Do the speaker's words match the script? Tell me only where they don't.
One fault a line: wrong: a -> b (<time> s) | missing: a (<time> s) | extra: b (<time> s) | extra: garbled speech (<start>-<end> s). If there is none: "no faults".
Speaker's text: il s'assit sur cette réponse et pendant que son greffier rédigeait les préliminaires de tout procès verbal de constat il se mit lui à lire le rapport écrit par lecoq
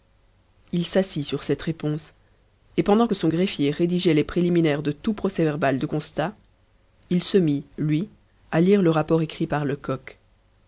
no faults